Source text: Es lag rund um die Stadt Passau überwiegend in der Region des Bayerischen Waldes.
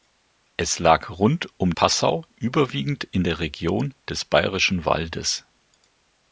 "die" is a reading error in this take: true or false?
true